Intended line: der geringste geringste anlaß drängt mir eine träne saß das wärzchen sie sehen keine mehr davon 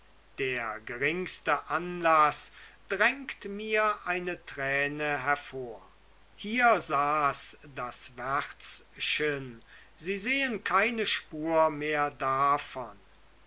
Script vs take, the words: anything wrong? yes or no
yes